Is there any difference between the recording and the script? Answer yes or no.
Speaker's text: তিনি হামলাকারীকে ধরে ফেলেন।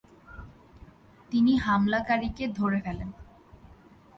no